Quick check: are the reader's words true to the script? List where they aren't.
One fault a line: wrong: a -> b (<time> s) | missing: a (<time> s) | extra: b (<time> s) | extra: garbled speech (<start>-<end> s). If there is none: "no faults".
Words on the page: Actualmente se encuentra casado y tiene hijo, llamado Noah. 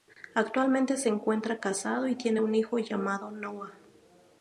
extra: un (2.4 s)